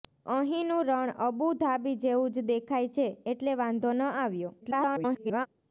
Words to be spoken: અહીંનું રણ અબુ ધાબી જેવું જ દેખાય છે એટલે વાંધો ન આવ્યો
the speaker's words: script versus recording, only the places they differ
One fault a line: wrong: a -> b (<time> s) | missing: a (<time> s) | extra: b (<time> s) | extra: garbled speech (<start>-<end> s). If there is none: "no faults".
extra: garbled speech (4.6-5.5 s)